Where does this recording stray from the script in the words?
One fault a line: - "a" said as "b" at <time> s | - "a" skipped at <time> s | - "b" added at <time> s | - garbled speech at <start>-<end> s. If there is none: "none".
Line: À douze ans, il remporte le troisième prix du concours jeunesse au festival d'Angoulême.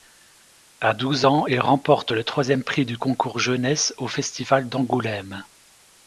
none